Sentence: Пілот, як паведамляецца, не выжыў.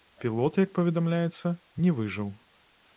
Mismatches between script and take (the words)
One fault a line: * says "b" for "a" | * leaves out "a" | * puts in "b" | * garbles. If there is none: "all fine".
all fine